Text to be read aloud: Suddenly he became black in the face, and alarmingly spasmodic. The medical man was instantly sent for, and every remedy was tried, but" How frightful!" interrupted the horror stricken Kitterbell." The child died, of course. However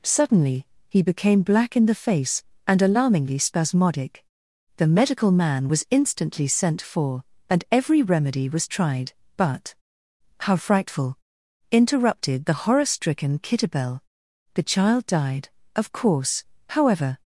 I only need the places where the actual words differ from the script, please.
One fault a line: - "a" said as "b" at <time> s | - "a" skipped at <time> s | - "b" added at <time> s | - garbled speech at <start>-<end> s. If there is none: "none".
none